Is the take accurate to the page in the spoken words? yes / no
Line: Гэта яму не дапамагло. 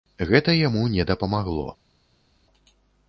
yes